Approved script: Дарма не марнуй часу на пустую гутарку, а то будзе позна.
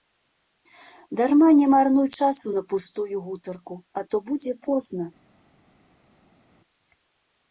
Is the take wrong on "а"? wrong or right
right